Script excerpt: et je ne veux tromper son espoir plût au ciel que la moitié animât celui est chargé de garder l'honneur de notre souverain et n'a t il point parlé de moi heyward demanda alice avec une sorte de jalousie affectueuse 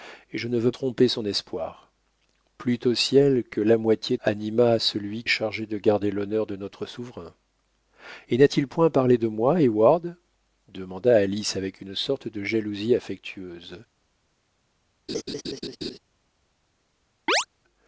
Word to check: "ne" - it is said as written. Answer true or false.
true